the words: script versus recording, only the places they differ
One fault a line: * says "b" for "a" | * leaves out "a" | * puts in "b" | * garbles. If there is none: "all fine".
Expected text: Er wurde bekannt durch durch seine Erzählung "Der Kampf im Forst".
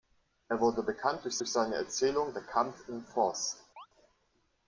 all fine